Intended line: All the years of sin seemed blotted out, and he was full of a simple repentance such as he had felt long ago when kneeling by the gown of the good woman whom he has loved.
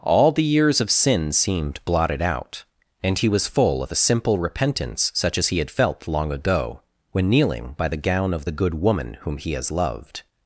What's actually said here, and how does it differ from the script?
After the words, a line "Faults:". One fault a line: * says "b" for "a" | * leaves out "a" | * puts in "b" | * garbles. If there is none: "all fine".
All the years of sin seemed blotted out, and he was full of a simple repentance such as he had felt long ago when kneeling by the gown of the good woman whom he has loved.
Faults:
all fine